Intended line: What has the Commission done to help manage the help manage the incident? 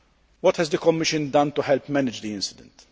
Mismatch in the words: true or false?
true